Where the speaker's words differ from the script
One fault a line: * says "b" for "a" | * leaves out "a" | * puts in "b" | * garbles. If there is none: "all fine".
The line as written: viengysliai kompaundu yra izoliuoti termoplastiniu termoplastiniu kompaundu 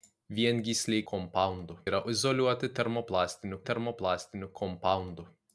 all fine